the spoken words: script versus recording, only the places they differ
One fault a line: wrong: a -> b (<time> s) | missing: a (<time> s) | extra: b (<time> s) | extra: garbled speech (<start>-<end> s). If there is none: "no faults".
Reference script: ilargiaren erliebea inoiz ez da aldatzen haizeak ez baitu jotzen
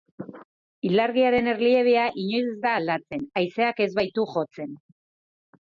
no faults